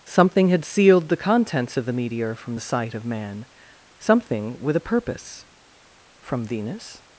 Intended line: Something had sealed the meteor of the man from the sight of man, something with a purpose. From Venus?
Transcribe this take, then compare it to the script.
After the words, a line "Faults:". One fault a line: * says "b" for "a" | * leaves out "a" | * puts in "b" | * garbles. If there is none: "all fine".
Something had sealed the contents of the meteor from the sight of man, something with a purpose. From Venus?
Faults:
* says "contents" for "meteor"
* says "meteor" for "man"